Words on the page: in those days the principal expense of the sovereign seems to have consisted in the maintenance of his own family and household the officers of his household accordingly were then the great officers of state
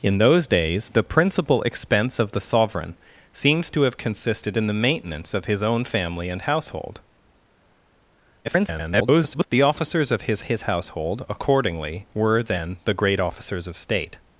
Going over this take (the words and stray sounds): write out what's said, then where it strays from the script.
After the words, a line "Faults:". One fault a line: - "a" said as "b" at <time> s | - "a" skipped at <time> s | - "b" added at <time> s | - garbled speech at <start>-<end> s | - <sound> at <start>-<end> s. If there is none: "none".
in those days the principal expense of the sovereign seems to have consisted in the maintenance of his own family and household [garbled] the officers of his his household accordingly were then the great officers of state
Faults:
- garbled speech at 8.4-9.5 s
- "his" added at 10.4 s